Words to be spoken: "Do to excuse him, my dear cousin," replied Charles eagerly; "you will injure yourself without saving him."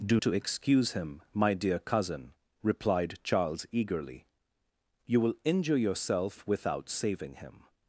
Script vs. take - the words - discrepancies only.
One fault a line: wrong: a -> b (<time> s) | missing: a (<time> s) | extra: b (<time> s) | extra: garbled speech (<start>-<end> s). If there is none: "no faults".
no faults